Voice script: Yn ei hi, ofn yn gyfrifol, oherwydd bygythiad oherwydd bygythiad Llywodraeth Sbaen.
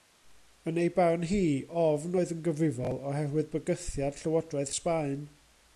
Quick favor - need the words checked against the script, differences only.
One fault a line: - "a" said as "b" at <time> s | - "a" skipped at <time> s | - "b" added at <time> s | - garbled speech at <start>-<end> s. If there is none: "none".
- "barn" added at 0.9 s
- "oedd" added at 2.2 s
- "oherwydd bygythiad" skipped at 4.2 s